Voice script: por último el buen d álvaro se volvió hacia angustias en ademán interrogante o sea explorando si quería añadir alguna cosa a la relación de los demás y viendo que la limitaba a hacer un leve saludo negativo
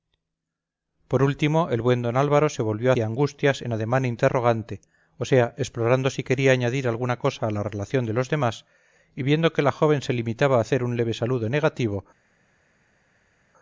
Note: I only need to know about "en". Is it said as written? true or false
true